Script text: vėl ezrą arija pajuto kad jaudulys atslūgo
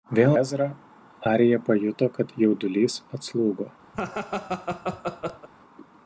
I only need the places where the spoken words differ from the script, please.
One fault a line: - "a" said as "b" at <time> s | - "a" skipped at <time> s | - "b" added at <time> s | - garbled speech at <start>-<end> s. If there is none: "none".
none